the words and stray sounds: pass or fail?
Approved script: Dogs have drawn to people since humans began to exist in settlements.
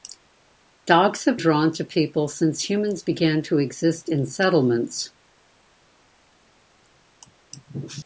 pass